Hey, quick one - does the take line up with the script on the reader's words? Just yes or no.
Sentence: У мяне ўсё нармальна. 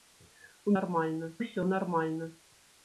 no